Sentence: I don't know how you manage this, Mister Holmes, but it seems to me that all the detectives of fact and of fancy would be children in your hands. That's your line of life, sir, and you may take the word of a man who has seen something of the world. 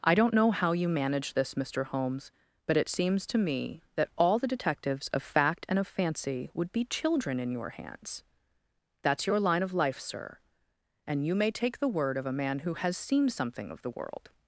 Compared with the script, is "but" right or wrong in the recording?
right